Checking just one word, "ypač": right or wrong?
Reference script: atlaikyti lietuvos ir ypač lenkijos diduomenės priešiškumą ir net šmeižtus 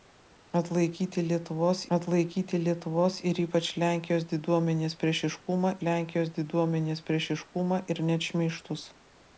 right